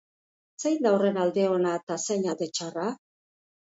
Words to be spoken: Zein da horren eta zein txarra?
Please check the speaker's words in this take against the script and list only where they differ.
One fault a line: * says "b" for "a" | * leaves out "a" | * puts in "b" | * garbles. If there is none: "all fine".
* puts in "alde ona"
* puts in "alde"